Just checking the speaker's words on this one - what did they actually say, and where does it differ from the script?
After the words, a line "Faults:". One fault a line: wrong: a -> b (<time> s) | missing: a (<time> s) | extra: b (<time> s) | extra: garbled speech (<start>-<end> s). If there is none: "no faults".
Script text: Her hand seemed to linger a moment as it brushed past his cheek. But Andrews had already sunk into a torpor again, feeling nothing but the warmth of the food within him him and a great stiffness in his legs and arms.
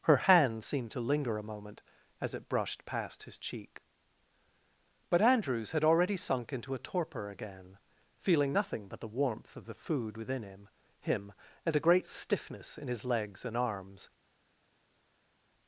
Her hand seemed to linger a moment as it brushed past his cheek. But Andrews had already sunk into a torpor again, feeling nothing but the warmth of the food within him him and a great stiffness in his legs and arms.
Faults:
no faults